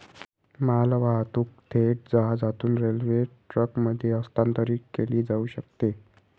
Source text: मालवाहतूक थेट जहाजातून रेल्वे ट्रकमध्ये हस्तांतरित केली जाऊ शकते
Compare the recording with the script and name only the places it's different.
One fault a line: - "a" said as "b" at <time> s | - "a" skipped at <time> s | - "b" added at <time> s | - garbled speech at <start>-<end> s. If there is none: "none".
none